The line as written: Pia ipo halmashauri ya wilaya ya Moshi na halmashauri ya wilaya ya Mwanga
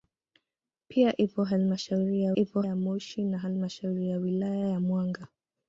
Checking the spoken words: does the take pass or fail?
fail